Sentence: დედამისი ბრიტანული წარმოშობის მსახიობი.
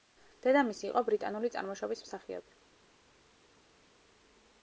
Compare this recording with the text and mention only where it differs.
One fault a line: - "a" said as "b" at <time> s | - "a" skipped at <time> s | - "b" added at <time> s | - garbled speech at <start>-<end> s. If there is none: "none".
- "იყო" added at 0.9 s